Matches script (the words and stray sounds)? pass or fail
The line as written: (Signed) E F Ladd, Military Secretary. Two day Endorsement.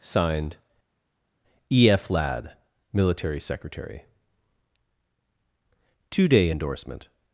pass